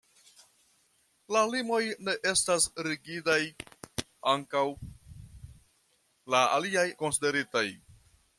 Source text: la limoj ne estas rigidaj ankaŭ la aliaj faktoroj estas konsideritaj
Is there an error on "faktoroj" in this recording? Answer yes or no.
yes